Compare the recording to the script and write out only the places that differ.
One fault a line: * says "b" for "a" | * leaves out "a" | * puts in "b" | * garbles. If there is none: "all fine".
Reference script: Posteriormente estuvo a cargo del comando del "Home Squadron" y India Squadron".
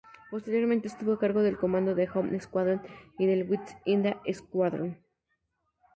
* puts in "del West"